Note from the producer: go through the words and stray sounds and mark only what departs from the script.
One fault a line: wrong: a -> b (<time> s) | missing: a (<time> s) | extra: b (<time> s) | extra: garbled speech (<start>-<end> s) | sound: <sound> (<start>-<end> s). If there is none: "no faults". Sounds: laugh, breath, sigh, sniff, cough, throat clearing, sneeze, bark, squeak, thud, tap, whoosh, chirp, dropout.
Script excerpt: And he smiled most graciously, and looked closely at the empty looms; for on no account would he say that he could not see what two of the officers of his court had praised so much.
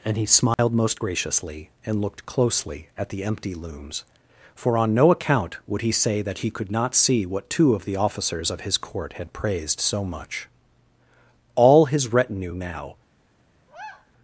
sound: dropout (0.5-0.6 s)
extra: All his retinue now (11.5 s)
sound: sigh (13.7-14.1 s)